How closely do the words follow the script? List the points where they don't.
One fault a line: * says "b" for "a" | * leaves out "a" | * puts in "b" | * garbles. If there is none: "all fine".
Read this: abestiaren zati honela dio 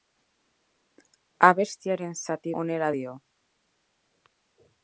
all fine